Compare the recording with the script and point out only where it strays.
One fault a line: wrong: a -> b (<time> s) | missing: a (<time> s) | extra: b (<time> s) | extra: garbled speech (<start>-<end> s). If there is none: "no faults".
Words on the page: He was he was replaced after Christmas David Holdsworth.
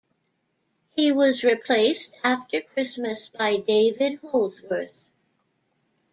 missing: he was (1.4 s)
extra: by (3.3 s)